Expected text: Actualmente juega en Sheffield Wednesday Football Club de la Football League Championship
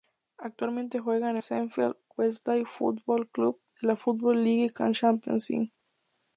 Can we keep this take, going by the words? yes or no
yes